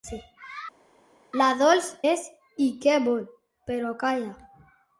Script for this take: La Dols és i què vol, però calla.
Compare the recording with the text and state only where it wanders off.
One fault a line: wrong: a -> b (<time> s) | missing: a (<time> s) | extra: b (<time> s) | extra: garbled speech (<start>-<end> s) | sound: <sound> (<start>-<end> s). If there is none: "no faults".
no faults